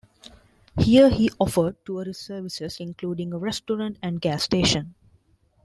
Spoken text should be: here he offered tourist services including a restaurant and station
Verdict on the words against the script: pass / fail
fail